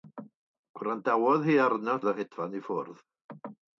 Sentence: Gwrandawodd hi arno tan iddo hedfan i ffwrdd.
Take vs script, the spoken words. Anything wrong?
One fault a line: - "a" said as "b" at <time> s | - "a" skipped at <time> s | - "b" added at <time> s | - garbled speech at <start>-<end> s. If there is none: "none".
- "tan" skipped at 1.9 s